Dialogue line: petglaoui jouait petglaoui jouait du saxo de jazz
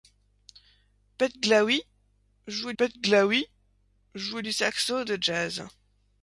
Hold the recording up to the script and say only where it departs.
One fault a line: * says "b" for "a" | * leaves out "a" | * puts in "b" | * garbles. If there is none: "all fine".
all fine